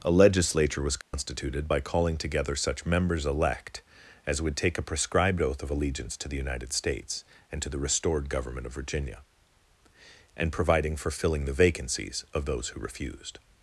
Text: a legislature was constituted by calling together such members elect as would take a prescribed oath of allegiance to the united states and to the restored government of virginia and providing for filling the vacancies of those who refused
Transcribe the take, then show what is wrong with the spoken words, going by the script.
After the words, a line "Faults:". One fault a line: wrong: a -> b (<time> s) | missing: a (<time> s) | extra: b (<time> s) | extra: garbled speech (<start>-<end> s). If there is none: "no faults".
a legislature was constituted by calling together such members elect as would take a prescribed oath of allegiance to the united states and to the restored government of virginia and providing for filling the vacancies of those who refused
Faults:
no faults